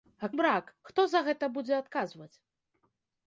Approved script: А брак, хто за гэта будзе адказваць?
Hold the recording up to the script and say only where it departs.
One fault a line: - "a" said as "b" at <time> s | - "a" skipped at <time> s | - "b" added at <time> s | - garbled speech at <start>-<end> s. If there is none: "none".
none